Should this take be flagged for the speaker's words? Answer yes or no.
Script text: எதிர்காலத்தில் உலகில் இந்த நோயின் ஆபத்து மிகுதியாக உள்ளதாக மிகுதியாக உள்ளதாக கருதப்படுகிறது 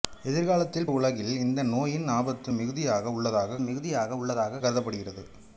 no